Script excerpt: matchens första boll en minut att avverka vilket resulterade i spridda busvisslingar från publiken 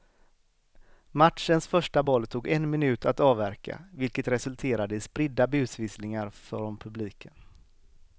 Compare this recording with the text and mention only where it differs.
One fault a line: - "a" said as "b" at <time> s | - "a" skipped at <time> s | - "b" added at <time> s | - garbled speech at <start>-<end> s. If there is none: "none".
- "tog" added at 2.3 s